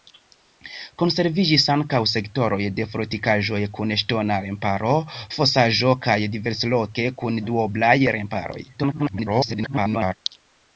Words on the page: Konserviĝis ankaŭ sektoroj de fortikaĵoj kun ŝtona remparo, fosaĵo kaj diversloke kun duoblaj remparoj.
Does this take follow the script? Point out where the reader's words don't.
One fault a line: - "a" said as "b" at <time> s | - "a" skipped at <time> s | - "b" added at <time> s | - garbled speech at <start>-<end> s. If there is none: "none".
- garbled speech at 8.7-10.1 s